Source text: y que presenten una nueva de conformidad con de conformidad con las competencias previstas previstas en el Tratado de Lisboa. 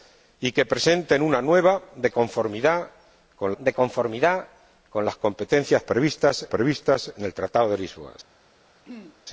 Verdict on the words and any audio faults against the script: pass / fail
fail